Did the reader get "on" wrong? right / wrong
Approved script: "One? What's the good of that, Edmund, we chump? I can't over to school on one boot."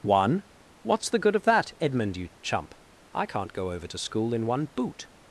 wrong